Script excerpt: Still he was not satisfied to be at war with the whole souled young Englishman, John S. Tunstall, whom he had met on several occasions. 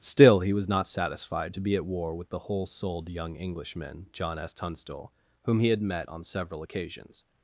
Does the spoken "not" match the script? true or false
true